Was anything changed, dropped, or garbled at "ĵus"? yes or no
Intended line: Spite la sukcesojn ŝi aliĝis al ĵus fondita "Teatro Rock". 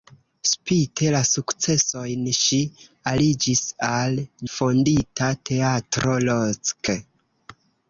yes